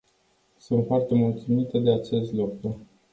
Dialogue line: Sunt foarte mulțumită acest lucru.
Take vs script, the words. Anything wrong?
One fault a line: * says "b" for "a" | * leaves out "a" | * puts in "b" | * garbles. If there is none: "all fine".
* puts in "de"